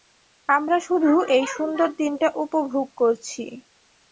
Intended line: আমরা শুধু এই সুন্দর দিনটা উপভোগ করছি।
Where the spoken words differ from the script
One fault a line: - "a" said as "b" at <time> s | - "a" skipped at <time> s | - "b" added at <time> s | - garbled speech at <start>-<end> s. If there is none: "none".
none